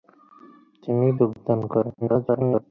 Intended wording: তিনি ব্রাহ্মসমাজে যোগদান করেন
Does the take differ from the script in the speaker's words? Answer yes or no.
yes